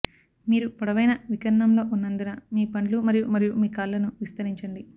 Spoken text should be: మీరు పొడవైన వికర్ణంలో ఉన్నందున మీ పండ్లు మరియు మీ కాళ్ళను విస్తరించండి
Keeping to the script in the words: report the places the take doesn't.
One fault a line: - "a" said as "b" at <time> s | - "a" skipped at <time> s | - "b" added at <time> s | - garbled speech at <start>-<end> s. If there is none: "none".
- "మరియు" added at 3.3 s